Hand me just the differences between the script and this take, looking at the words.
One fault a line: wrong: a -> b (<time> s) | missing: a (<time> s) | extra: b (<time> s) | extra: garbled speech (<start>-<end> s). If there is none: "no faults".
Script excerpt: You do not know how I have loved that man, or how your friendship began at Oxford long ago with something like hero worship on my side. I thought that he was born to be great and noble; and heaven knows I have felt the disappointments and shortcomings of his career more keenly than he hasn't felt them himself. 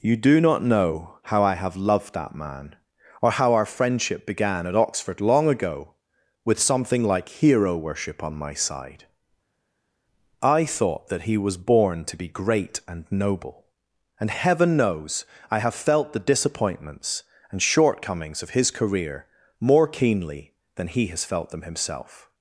wrong: your -> our (3.5 s)
wrong: hasn't -> has (21.1 s)